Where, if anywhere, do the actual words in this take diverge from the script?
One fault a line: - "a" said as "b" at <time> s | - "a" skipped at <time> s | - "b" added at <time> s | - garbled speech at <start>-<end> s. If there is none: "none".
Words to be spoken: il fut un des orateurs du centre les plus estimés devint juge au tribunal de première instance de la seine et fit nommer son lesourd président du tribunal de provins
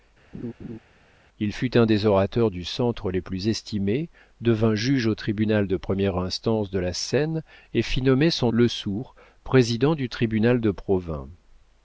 none